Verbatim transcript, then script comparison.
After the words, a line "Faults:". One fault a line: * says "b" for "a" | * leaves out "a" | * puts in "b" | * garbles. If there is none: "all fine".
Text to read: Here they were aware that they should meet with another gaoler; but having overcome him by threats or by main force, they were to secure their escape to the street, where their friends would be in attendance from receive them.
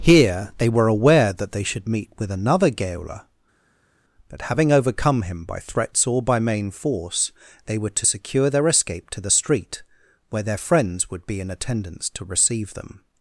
Here they were aware that they should meet with another gaoler; but having overcome him by threats or by main force, they were to secure their escape to the street, where their friends would be in attendance to receive them.
Faults:
* says "to" for "from"